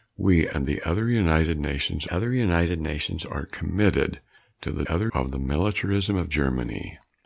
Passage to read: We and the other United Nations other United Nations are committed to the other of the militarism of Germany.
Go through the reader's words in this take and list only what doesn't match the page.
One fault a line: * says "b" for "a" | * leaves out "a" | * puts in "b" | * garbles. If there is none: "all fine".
all fine